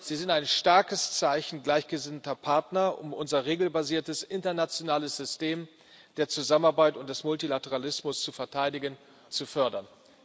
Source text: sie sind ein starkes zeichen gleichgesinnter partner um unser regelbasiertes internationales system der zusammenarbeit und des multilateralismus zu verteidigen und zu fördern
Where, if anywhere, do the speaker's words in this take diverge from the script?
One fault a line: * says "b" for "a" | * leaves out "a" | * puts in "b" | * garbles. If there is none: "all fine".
* leaves out "und"